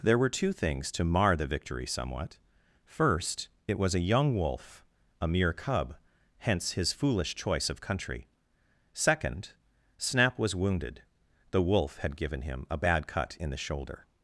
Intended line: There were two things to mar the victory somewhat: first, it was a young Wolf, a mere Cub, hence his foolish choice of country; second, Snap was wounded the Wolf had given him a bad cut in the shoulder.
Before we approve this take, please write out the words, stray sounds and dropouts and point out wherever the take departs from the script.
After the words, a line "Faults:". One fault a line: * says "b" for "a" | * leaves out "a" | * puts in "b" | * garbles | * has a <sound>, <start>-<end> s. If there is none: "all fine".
There were two things to mar the victory somewhat: first, it was a young Wolf, a mere Cub, hence his foolish choice of country; second, Snap was wounded the Wolf had given him a bad cut in the shoulder.
Faults:
all fine